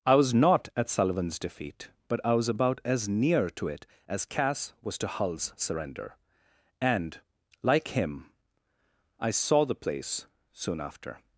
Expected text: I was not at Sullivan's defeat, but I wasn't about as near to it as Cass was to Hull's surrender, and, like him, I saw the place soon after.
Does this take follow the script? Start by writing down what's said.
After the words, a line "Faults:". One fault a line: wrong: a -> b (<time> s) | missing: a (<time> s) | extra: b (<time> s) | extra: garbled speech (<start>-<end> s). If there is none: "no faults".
I was not at Sullivan's defeat, but I was about as near to it as Cass was to Hull's surrender, and, like him, I saw the place soon after.
Faults:
wrong: wasn't -> was (2.3 s)